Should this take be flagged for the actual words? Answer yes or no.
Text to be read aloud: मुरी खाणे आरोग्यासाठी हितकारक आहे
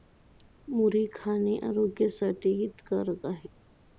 no